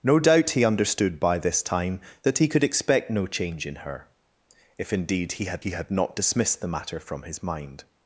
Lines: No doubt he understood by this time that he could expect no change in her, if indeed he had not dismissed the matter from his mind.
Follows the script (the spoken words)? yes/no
no